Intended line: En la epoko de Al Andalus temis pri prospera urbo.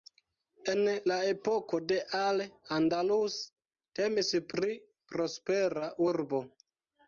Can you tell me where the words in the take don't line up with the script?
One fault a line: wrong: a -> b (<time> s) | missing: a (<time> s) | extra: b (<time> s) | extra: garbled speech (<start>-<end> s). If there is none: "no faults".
no faults